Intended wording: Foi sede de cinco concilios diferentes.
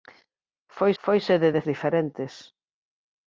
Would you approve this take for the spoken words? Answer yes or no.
no